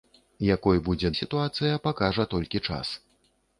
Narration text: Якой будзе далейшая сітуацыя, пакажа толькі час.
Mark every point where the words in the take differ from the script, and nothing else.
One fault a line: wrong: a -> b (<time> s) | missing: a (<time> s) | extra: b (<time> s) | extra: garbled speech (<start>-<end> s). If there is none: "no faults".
missing: далейшая (1.1 s)